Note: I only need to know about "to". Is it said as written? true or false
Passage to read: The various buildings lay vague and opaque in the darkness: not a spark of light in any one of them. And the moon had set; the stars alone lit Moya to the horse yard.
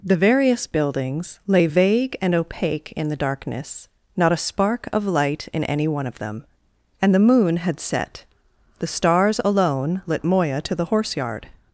true